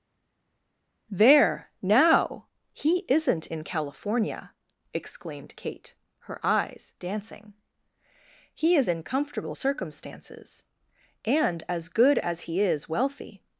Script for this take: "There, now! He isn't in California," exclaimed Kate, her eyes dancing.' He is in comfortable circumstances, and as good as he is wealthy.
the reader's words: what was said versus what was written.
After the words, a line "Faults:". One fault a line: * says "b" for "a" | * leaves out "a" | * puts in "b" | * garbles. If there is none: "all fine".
"There, now! He isn't in California," exclaimed Kate, her eyes dancing.' He is in comfortable circumstances, and as good as he is wealthy.
Faults:
all fine